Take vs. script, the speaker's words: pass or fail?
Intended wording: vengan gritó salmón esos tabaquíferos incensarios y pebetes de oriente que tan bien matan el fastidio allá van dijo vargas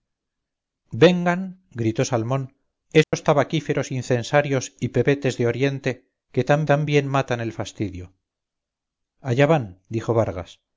fail